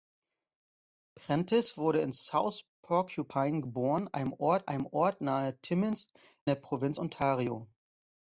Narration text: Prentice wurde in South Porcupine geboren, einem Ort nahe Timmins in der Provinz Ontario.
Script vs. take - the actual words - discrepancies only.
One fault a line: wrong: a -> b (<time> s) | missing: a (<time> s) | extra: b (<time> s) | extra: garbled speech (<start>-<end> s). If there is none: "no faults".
extra: einem Ort (4.6 s)
missing: in (6.1 s)